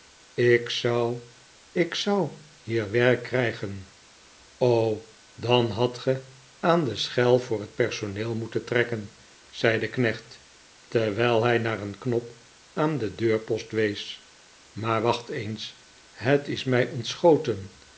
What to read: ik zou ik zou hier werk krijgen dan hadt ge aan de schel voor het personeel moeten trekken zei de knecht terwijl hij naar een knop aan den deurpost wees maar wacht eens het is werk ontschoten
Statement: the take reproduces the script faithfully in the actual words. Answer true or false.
false